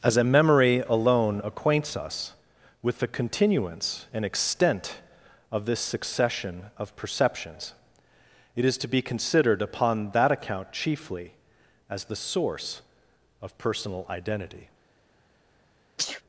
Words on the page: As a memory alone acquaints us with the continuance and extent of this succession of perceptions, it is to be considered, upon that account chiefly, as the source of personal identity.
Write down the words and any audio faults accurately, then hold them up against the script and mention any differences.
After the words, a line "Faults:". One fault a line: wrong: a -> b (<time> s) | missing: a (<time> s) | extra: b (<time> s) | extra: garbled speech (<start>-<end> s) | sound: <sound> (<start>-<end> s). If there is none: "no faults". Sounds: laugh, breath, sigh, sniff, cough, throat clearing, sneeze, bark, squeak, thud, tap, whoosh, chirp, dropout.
As a memory alone acquaints us with the continuance and extent of this succession of perceptions, it is to be considered, upon that account chiefly, as the source of personal identity.
Faults:
sound: sneeze (16.0-16.2 s)